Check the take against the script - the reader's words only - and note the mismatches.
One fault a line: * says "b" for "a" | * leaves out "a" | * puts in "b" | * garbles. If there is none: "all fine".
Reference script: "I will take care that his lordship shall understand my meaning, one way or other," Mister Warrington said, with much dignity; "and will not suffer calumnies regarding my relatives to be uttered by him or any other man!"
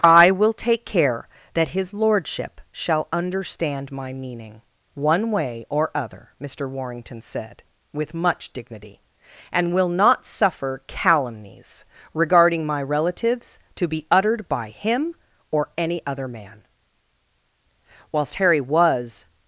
* puts in "Whilst Harry was"